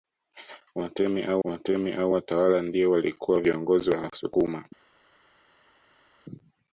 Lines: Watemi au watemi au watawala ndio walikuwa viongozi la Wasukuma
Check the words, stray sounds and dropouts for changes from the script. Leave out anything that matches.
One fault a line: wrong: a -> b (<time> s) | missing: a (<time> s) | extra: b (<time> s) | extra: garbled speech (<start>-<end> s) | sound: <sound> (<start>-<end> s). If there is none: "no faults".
no faults